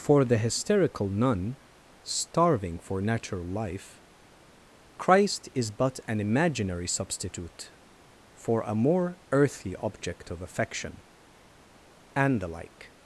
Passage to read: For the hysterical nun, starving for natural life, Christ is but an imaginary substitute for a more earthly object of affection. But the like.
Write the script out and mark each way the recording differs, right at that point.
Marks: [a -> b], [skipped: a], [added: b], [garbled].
For the hysterical nun, starving for natural life, Christ is but an imaginary substitute for a more earthly object of affection. [But -> And] the like.